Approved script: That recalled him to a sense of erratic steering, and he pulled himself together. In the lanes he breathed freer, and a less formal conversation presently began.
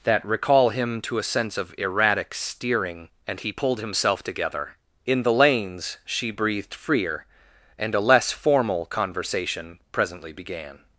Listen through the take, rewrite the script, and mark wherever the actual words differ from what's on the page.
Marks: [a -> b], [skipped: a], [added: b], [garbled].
That [recalled -> recall] him to a sense of erratic steering, and he pulled himself together. In the lanes [he -> she] breathed freer, and a less formal conversation presently began.